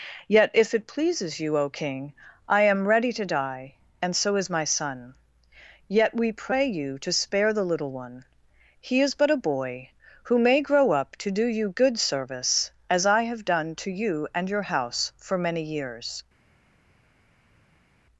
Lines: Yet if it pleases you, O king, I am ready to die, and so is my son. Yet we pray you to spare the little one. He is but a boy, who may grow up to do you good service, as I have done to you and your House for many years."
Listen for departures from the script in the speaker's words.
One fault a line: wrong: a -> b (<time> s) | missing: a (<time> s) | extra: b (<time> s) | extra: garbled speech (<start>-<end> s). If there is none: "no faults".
no faults